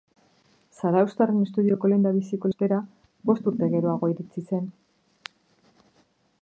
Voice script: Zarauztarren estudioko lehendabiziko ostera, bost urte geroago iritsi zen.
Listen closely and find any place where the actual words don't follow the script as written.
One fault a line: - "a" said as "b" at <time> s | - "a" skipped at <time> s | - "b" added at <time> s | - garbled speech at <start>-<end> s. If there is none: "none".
none